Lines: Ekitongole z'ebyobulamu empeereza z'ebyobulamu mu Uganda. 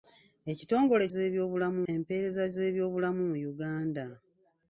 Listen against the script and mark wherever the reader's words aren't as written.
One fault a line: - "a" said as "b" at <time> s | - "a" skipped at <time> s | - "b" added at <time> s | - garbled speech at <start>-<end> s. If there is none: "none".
none